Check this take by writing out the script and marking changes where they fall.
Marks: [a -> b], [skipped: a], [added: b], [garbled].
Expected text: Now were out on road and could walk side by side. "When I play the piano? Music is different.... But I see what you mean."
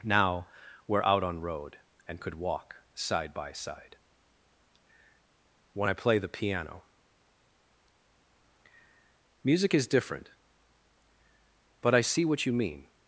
Now were out on road and could walk side by side. "When I play the piano? Music is different.... But I see what you mean."